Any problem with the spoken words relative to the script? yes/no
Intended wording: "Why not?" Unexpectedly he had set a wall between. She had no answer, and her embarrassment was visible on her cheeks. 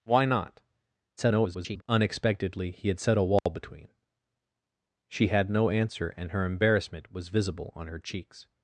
yes